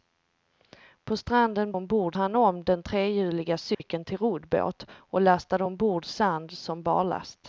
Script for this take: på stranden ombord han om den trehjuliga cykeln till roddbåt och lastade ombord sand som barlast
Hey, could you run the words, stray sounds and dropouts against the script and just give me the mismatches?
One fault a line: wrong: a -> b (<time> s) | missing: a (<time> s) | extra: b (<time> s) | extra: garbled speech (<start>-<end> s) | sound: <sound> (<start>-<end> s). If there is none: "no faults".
sound: dropout (3.7-3.8 s)